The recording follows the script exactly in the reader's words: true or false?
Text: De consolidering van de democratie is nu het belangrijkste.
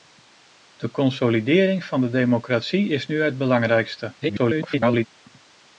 false